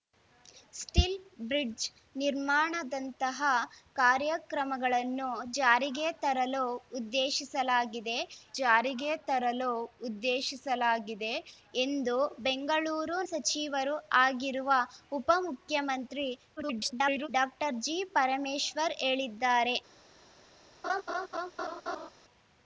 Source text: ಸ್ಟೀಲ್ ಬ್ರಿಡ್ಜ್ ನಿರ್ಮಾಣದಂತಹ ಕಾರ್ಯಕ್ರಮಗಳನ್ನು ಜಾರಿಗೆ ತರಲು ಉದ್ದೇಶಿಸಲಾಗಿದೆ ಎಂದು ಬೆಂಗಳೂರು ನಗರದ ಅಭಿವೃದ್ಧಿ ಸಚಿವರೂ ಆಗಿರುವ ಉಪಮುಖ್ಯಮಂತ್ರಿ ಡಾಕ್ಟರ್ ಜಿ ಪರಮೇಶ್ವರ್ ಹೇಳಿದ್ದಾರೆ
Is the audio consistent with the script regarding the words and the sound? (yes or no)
no